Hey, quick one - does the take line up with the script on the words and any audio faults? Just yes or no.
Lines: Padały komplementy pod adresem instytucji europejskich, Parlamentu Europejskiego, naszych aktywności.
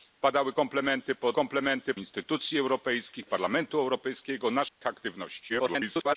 no